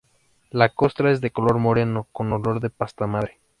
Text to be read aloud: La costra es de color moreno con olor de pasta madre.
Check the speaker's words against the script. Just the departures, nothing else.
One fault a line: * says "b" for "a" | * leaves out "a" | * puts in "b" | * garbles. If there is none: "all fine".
all fine